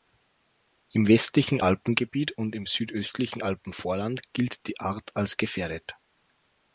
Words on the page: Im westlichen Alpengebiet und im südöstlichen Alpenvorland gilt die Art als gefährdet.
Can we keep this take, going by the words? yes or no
yes